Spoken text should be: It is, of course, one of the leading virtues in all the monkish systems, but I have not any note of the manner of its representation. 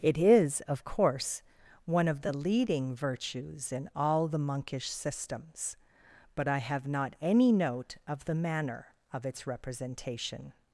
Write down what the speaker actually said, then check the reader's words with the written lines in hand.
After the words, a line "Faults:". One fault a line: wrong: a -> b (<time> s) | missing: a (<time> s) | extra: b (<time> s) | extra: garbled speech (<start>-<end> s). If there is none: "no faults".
It is, of course, one of the leading virtues in all the monkish systems, but I have not any note of the manner of its representation.
Faults:
no faults